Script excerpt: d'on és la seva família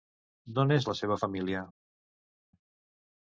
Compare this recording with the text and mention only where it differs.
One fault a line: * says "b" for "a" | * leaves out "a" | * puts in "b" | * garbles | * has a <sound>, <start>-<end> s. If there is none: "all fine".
all fine